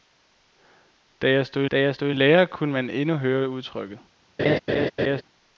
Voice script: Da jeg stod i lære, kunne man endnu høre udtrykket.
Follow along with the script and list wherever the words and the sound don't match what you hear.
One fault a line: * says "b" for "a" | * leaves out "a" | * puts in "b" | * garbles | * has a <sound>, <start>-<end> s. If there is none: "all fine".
* puts in "da jeg stod"
* has a laugh, 4.4-5.2 s